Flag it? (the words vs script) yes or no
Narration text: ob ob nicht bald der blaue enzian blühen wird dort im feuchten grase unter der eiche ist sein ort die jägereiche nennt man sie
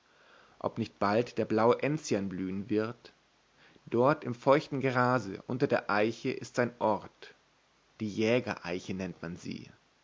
yes